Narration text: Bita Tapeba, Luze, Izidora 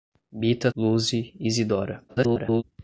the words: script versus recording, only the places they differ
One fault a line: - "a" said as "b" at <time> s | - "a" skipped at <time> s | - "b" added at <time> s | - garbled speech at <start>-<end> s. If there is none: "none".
- "Tapeba" skipped at 0.7 s
- garbled speech at 2.1-2.6 s